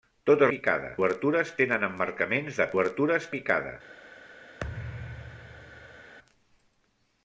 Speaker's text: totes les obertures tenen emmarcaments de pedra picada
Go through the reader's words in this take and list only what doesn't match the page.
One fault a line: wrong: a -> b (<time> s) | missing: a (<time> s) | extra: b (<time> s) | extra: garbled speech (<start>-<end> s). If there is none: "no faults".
wrong: les -> picada (0.5 s)
wrong: pedra -> obertures (2.7 s)